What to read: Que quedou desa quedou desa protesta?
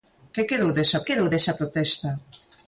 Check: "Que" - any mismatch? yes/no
no